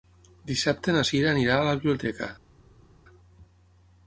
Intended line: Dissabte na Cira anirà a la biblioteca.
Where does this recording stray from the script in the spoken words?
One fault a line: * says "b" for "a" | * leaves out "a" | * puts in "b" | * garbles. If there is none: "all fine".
all fine